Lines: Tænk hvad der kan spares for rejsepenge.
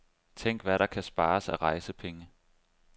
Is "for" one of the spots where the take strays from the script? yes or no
yes